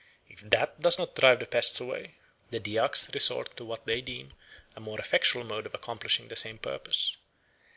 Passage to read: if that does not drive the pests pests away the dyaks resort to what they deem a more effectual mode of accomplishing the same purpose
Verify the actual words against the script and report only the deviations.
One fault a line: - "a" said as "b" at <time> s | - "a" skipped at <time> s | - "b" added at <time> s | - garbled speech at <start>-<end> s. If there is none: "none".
- "pests" skipped at 1.8 s